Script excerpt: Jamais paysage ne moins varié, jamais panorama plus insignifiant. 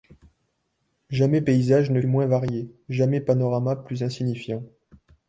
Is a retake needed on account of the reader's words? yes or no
no